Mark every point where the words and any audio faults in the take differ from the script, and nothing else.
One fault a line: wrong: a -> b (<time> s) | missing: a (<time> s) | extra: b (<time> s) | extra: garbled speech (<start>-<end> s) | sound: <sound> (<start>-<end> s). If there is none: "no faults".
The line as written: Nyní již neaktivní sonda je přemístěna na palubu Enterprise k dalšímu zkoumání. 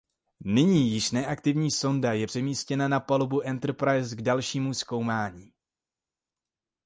no faults